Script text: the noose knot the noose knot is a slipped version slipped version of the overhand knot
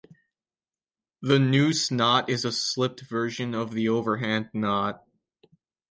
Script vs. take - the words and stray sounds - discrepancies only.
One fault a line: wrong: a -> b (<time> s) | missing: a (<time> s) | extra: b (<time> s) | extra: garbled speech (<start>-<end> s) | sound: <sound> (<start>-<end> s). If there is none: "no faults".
missing: the noose knot (2.3 s)
missing: slipped version (3.5 s)